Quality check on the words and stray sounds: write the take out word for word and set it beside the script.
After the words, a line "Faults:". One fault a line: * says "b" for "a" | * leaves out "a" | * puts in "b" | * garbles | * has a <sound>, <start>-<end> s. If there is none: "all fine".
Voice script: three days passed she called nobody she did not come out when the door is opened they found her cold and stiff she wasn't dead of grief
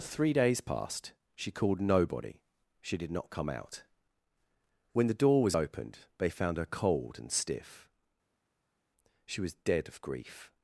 three days passed she called nobody she did not come out when the door was opened they found her cold and stiff she was dead of grief
Faults:
* says "was" for "is"
* says "was" for "wasn't"